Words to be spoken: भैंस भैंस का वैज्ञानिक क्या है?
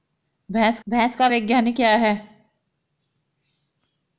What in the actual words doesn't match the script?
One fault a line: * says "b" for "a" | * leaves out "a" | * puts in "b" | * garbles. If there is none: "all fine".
all fine